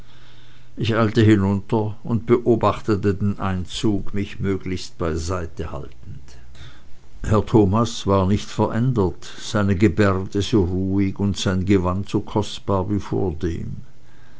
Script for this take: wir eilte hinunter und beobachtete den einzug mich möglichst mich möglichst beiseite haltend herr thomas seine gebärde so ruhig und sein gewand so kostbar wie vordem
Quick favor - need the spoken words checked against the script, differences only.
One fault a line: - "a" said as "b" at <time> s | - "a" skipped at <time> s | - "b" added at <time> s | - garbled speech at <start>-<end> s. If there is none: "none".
- "wir" said as "ich" at 0.8 s
- "mich möglichst" skipped at 5.0 s
- "war nicht verändert" added at 8.1 s